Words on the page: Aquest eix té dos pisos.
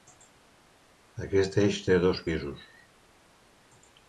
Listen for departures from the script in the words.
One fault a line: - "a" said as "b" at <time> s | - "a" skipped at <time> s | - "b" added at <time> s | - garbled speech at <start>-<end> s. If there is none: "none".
none